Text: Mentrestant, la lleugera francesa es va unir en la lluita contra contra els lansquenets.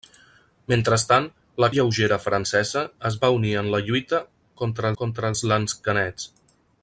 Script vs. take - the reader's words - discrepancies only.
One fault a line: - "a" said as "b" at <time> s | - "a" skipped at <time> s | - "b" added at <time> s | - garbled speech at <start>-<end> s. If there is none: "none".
none